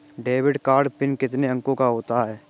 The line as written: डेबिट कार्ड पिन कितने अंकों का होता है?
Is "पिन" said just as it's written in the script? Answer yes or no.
yes